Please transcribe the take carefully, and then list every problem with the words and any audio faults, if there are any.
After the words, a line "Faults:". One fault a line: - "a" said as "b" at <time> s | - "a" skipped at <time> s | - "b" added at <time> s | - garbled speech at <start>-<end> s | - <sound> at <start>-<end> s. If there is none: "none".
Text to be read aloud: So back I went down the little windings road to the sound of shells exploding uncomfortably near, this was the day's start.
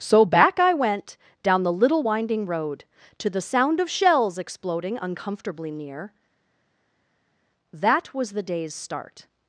So back I went down the little winding road to the sound of shells exploding uncomfortably near, that was the day's start.
Faults:
- "windings" said as "winding" at 2.0 s
- "this" said as "that" at 7.7 s